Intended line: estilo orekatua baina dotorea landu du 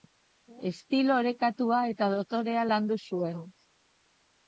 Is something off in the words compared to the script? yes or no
yes